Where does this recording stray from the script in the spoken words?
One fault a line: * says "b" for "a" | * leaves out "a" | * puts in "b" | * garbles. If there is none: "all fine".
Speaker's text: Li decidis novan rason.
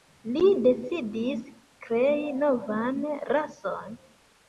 * puts in "krei"